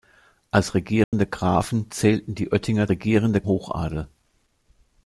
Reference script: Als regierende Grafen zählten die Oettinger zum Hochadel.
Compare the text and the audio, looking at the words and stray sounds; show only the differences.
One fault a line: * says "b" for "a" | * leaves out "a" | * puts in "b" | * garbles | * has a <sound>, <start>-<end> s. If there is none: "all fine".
* has a dropout, 1.0-1.1 s
* says "regierende" for "zum"